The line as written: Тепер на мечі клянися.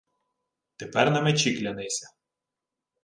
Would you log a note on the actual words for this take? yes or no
no